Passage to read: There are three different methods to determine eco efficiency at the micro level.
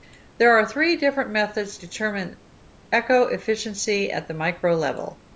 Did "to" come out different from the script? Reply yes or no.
yes